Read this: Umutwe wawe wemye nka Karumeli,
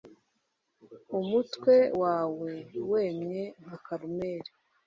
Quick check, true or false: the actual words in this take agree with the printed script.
true